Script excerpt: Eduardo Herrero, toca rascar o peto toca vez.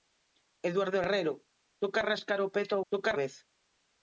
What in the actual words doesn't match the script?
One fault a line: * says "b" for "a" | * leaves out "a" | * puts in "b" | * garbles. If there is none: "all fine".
all fine